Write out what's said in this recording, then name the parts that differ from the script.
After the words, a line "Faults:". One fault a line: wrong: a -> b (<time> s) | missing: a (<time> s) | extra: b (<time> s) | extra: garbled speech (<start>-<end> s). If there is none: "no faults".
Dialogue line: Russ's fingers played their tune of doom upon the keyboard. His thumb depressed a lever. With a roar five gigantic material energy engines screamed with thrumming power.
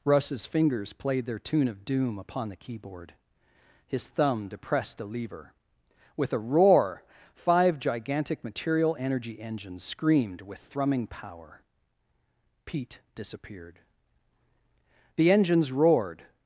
Russ's fingers played their tune of doom upon the keyboard. His thumb depressed a lever. With a roar five gigantic material energy engines screamed with thrumming power. Pete disappeared. The engines roared
Faults:
extra: Pete disappeared The engines roared (12.7 s)